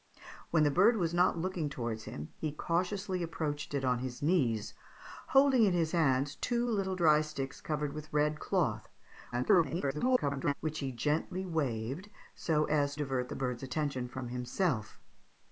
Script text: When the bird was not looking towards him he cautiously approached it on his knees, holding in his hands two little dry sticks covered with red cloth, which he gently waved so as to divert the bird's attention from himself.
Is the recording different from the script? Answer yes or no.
yes